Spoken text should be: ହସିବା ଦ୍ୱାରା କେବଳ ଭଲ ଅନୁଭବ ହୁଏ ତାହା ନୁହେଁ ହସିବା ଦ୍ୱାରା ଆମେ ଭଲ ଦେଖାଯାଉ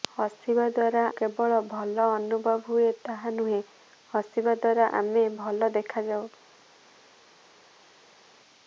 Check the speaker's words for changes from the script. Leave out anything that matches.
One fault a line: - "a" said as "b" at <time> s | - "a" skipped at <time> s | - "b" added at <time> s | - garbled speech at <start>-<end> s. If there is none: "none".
none